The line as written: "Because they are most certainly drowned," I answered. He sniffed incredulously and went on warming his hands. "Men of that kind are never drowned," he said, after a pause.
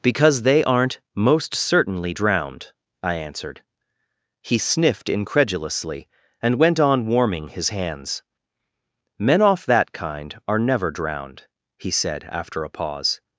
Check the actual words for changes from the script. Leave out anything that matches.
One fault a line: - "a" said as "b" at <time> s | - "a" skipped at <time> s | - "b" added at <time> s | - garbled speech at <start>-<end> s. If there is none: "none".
- "are" said as "aren't" at 0.6 s
- "of" said as "off" at 9.4 s